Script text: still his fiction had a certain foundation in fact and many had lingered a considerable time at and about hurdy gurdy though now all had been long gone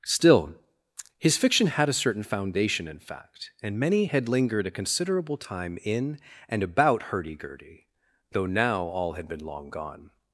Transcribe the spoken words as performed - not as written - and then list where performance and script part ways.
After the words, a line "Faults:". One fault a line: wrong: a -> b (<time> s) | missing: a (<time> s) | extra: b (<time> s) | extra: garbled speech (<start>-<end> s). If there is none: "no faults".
still his fiction had a certain foundation in fact and many had lingered a considerable time in and about hurdy gurdy though now all had been long gone
Faults:
wrong: at -> in (5.8 s)